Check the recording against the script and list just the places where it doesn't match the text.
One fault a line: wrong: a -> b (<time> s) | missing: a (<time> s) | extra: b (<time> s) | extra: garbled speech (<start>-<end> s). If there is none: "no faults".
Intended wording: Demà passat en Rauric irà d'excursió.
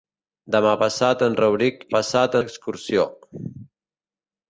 wrong: irà -> passat (2.0 s)